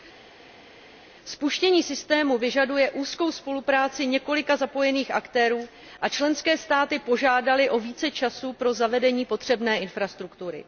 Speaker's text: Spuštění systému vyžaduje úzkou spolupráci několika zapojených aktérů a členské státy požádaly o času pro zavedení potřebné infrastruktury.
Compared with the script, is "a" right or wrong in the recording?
right